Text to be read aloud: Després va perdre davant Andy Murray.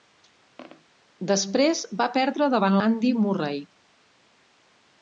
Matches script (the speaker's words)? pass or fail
pass